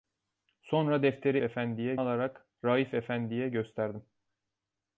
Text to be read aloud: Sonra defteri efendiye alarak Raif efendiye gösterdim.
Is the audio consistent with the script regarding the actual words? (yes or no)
yes